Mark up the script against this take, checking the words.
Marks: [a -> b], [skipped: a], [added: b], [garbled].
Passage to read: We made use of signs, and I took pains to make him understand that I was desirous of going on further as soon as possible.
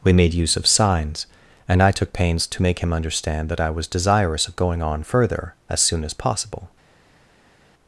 We made use of signs, and I took pains to make him understand that I was desirous of going on further as soon as possible.